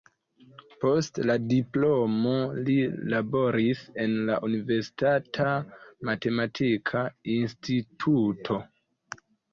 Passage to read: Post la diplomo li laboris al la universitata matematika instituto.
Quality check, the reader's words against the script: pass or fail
fail